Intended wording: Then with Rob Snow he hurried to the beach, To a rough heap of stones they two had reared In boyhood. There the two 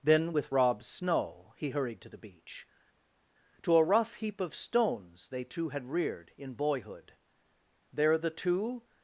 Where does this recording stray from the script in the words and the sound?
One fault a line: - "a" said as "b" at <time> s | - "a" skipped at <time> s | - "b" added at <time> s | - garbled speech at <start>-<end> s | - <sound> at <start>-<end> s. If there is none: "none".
none